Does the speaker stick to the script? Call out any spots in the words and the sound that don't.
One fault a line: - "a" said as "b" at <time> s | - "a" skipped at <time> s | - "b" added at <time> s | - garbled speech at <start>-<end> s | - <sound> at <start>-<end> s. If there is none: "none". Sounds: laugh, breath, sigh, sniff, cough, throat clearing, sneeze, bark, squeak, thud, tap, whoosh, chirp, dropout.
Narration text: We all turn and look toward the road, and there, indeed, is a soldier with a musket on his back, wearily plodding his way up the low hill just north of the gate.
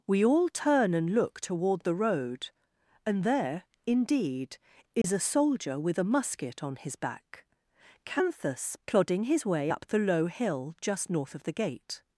- dropout at 5.0-5.0 s
- "wearily" said as "canthus" at 8.0 s